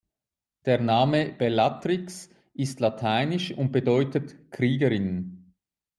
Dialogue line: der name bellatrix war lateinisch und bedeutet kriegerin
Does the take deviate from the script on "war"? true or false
true